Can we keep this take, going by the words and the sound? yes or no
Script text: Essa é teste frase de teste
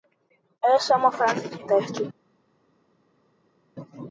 no